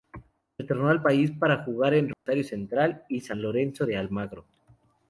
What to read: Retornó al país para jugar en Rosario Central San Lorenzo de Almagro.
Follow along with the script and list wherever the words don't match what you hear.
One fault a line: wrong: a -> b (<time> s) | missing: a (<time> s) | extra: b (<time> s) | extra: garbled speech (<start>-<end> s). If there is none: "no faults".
extra: y (3.1 s)